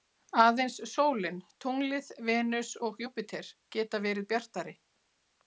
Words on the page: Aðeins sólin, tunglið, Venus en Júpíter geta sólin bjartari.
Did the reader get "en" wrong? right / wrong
wrong